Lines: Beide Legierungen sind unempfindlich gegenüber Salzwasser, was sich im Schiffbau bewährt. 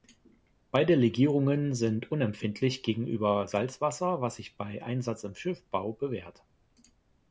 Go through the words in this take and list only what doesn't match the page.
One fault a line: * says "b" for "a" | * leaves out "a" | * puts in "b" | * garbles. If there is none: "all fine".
* puts in "bei Einsatz"